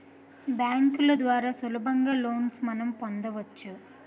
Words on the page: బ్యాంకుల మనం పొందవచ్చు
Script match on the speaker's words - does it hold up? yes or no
no